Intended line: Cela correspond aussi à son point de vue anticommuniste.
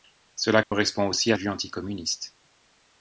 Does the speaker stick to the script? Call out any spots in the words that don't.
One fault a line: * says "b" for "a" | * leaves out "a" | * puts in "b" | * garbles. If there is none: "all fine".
* leaves out "son point"